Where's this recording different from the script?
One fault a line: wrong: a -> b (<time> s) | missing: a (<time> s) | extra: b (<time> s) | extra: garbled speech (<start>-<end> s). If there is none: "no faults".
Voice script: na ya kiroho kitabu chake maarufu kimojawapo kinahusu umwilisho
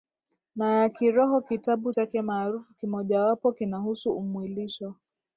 no faults